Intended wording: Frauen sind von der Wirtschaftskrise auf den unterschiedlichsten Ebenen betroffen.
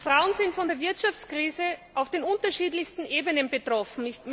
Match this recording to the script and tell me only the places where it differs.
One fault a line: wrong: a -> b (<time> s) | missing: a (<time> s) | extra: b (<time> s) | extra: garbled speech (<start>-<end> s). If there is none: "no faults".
no faults